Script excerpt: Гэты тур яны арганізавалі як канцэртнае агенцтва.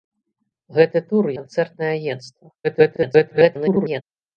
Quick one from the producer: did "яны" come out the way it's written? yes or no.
no